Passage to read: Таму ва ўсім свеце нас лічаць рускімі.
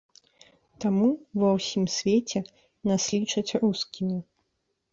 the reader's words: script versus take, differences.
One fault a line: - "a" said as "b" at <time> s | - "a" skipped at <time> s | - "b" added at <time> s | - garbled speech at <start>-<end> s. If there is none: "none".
none